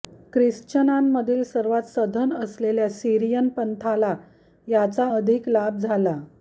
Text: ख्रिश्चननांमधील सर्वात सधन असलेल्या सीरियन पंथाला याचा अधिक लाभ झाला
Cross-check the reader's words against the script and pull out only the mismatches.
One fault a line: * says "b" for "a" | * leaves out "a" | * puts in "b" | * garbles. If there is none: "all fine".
all fine